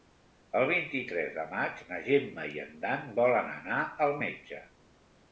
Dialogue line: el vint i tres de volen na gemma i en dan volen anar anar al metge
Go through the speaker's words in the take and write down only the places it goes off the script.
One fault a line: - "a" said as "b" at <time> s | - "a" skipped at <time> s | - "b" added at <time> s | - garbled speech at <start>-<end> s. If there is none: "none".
- "volen" said as "maig" at 1.5 s
- "anar" skipped at 3.8 s